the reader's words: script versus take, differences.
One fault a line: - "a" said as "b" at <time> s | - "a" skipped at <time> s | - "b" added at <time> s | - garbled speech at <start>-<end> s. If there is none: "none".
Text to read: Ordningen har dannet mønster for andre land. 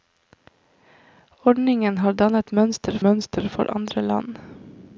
- "mønster" added at 3.1 s